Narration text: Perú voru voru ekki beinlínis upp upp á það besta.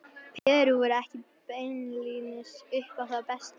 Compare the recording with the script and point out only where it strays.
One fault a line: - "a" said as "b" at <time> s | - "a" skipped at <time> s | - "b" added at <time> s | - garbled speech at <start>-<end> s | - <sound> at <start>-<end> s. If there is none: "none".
- dropout at 0.4-0.5 s
- "voru" skipped at 0.9 s
- "upp" skipped at 3.0 s